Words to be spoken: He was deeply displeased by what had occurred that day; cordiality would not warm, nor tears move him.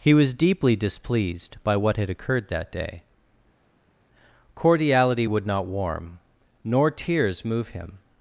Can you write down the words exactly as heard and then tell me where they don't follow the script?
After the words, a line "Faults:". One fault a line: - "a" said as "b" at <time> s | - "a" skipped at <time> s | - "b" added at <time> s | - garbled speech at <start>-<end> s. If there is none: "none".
He was deeply displeased by what had occurred that day; cordiality would not warm, nor tears move him.
Faults:
none